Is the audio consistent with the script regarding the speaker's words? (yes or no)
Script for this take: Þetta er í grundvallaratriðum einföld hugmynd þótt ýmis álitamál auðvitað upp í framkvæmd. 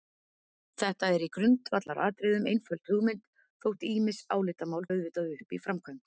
yes